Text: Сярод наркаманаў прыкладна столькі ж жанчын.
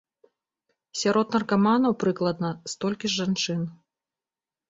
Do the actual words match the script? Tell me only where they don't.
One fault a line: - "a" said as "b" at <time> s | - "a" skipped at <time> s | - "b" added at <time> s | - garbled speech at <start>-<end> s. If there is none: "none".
none